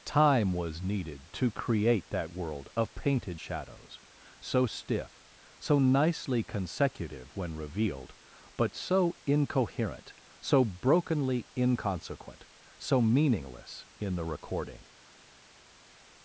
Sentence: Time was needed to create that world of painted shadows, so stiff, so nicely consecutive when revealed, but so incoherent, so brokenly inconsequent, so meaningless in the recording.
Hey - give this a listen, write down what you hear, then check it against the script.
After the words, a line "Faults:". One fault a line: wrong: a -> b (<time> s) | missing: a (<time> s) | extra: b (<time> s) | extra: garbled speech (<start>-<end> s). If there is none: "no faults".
Time was needed to create that world of painted shadows, so stiff, so nicely consecutive when revealed, but so incoherent, so brokenly inconsequent, so meaningless in the recording.
Faults:
no faults